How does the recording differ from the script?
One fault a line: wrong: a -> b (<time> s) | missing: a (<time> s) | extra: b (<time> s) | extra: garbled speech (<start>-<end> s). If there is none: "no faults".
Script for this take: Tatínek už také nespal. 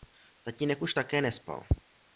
no faults